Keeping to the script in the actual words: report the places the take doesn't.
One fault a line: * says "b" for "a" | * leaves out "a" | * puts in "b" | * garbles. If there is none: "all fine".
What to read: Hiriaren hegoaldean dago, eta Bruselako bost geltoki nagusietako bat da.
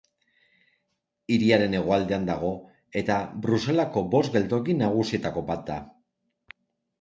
all fine